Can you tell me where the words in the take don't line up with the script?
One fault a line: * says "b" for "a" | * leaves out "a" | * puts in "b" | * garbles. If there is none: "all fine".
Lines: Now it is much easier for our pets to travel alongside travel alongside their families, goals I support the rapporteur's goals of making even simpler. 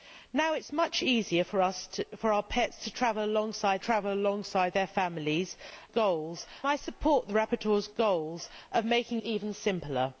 all fine